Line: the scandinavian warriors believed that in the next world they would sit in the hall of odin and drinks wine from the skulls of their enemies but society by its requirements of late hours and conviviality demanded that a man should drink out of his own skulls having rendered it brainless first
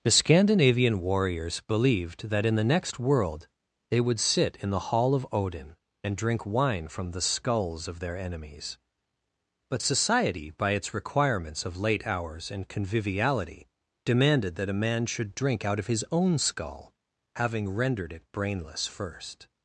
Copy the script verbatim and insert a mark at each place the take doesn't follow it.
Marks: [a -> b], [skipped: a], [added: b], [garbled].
the scandinavian warriors believed that in the next world they would sit in the hall of odin and [drinks -> drink] wine from the skulls of their enemies but society by its requirements of late hours and conviviality demanded that a man should drink out of his own [skulls -> skull] having rendered it brainless first